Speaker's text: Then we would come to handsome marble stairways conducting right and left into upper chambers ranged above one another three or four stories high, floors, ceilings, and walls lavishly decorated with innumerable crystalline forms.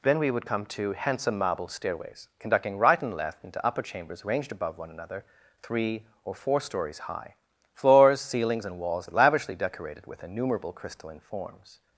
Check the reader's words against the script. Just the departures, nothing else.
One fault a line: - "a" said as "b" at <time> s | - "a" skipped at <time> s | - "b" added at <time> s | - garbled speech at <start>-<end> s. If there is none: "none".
none